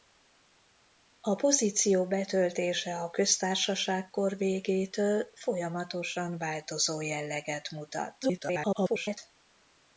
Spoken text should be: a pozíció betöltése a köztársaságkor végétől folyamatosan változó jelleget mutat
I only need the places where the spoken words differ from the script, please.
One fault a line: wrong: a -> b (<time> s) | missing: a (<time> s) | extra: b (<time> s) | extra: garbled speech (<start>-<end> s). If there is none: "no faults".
extra: garbled speech (8.2-9.2 s)